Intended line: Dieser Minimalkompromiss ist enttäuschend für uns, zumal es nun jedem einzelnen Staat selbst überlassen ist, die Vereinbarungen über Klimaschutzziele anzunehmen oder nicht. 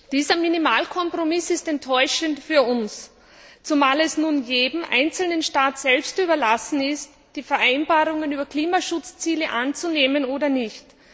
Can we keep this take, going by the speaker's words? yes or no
yes